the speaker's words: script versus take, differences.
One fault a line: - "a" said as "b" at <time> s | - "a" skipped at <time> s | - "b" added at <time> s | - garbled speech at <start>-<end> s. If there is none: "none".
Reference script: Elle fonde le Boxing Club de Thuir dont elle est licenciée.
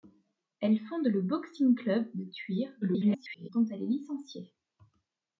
- garbled speech at 2.8-3.5 s